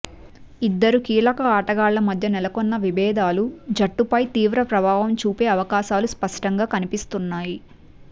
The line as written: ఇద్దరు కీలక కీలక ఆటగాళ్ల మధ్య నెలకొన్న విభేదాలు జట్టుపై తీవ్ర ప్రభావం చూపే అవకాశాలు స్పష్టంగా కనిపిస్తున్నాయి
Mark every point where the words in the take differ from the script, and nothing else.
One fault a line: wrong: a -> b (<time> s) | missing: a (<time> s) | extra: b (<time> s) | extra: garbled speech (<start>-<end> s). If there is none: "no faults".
missing: కీలక (1.4 s)